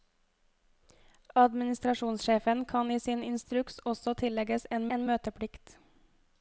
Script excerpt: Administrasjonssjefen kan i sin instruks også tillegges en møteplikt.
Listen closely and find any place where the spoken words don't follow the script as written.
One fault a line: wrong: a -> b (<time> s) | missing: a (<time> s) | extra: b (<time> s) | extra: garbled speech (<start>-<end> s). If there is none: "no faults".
extra: en (4.9 s)